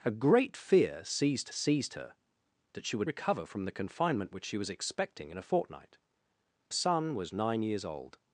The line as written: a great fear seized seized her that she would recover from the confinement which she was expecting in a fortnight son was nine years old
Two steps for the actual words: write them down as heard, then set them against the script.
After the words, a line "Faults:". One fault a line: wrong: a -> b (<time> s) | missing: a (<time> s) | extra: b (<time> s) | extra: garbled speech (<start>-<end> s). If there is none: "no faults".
a great fear seized seized her that she would recover from the confinement which she was expecting in a fortnight son was nine years old
Faults:
no faults